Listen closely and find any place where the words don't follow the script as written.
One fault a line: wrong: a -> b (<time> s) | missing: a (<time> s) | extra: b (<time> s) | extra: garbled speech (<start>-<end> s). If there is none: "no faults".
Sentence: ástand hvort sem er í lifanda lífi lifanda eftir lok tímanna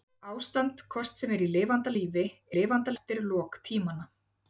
no faults